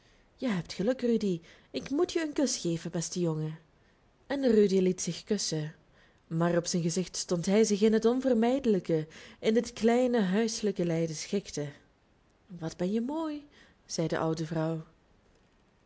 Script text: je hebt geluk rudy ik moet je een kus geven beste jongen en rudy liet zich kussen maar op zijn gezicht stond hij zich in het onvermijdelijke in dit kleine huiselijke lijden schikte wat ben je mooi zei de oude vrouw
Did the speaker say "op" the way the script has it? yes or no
yes